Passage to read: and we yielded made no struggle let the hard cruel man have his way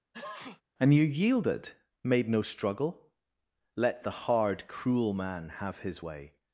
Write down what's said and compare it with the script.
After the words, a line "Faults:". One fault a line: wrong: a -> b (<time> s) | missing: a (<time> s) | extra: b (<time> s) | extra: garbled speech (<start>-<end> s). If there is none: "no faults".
and you yielded made no struggle let the hard cruel man have his way
Faults:
wrong: we -> you (0.9 s)